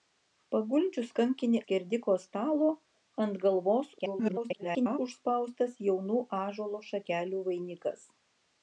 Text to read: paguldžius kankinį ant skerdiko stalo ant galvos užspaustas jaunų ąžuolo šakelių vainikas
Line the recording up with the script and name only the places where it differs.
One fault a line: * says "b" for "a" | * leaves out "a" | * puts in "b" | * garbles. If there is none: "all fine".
* leaves out "ant"
* garbles